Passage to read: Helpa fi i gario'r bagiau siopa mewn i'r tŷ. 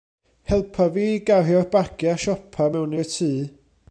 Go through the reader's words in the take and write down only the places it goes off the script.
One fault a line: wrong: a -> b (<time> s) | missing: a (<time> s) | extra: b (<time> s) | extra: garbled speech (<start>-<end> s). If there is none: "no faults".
no faults